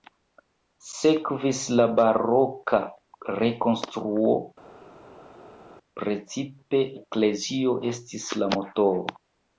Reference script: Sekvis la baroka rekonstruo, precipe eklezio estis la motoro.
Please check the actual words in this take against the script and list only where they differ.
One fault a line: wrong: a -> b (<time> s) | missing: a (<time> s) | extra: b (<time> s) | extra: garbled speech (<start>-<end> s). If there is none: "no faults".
no faults